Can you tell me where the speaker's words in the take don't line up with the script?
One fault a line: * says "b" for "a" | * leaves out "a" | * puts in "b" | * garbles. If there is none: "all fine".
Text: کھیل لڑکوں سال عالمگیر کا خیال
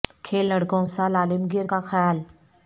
all fine